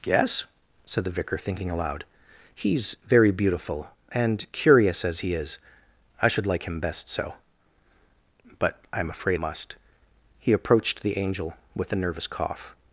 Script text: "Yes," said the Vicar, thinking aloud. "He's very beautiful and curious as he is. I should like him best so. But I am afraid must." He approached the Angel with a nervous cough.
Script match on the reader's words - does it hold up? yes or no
yes